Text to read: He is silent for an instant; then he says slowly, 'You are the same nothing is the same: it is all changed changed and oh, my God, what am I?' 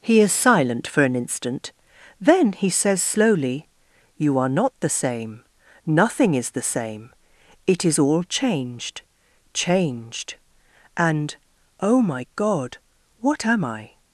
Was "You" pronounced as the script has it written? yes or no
yes